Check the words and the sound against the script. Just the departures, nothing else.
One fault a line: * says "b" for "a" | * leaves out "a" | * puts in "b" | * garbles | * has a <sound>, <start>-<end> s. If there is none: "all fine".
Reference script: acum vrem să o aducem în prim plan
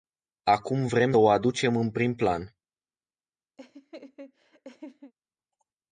* leaves out "să"
* has a laugh, 3.6-5.1 s